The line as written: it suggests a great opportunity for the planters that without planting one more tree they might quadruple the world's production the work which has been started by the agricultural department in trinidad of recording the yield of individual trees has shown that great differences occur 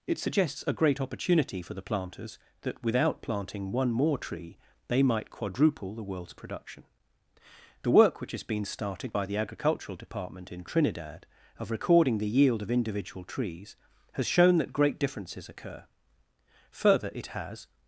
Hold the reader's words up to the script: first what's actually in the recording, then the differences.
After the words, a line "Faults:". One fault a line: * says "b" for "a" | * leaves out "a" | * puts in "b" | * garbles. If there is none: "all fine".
it suggests a great opportunity for the planters that without planting one more tree they might quadruple the world's production the work which has been started by the agricultural department in trinidad of recording the yield of individual trees has shown that great differences occur further it has
Faults:
* puts in "further it has"